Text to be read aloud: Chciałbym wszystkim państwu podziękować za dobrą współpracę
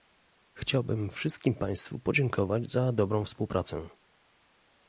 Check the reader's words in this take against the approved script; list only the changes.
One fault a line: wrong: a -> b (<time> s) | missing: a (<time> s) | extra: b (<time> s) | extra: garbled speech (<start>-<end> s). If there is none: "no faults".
no faults